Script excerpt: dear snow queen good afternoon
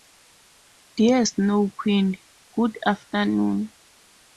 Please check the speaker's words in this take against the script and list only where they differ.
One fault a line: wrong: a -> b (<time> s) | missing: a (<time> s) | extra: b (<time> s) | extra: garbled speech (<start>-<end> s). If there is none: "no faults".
no faults